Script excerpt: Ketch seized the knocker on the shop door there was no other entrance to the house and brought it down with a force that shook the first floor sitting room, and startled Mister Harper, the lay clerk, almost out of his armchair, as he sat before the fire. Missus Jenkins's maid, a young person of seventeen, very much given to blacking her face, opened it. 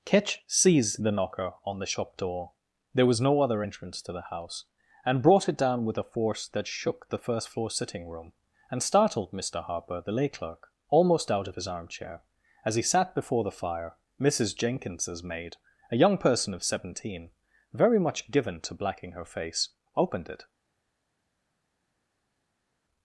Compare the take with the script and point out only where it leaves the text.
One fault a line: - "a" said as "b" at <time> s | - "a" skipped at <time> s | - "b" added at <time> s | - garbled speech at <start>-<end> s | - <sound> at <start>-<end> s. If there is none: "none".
none